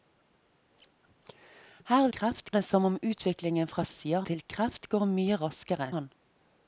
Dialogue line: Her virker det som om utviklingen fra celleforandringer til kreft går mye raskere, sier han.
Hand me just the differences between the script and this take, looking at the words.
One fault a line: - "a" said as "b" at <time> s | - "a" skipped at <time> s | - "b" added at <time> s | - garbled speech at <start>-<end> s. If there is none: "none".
- "virker" said as "kreft" at 2.2 s
- "celleforandringer" said as "sier" at 3.9 s
- "sier" skipped at 5.9 s